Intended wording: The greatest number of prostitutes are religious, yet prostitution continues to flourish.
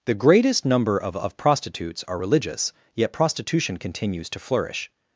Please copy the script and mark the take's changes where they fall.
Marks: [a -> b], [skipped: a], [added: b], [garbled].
The greatest number of [added: of] prostitutes are religious, yet prostitution continues to flourish.